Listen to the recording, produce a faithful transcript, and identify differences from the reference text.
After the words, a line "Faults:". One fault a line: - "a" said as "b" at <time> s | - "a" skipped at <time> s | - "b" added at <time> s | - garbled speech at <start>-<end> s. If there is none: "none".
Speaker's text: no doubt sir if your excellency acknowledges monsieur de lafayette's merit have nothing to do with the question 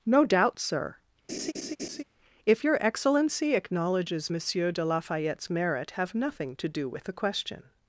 no doubt sir if your excellency acknowledges monsieur de lafayette's merit have nothing to do with the question
Faults:
none